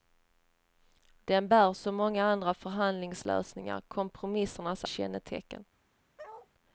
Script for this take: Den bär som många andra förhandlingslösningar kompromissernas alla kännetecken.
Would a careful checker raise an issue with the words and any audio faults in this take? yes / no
yes